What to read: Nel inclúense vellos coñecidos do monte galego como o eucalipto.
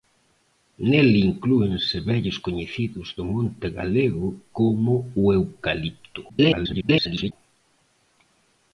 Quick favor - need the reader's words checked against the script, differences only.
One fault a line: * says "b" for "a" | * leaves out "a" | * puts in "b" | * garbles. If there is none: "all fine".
* garbles